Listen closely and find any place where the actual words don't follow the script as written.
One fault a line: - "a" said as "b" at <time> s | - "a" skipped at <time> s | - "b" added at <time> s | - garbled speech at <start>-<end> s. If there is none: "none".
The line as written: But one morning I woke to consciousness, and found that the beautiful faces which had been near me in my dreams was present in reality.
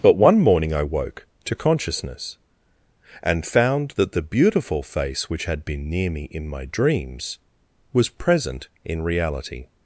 - "faces" said as "face" at 4.8 s